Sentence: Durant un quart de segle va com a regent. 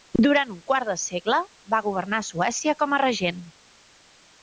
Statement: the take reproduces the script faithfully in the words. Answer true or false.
false